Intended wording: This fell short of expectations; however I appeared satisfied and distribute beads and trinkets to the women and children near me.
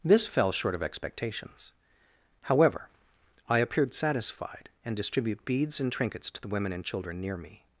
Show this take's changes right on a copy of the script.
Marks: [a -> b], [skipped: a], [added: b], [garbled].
This fell short of expectations; however I appeared satisfied and distribute beads and trinkets to the women and children near me.